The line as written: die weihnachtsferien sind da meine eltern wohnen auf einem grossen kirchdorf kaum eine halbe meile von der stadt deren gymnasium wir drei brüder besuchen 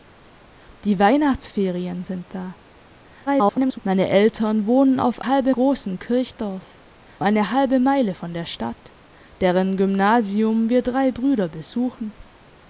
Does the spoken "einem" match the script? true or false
false